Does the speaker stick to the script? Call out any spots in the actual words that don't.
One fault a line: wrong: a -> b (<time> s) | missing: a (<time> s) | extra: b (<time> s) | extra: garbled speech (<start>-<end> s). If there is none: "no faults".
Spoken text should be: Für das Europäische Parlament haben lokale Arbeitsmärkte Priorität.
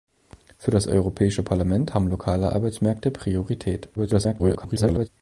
extra: garbled speech (4.0-5.1 s)